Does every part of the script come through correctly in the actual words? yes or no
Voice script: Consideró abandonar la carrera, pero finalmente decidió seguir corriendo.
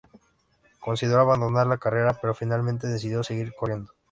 yes